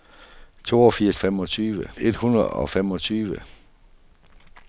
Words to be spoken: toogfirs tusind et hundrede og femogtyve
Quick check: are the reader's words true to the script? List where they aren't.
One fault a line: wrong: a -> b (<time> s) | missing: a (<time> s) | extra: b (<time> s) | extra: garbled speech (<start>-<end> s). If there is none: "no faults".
wrong: tusind -> femogtyve (1.2 s)